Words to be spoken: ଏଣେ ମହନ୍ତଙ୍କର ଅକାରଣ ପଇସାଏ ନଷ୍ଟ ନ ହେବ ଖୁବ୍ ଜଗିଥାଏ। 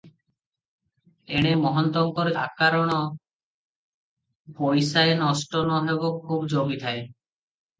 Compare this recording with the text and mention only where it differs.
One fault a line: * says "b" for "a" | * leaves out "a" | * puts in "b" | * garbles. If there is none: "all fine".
all fine